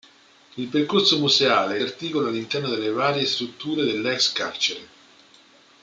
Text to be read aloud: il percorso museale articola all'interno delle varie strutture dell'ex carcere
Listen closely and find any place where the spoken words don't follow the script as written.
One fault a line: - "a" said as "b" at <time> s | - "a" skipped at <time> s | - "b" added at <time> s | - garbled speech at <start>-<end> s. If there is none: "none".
none